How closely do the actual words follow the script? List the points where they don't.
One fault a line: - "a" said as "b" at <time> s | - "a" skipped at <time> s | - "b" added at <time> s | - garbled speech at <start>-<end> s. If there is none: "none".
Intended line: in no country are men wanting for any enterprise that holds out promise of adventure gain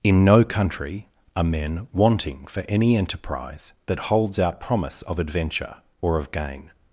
- "or of" added at 6.0 s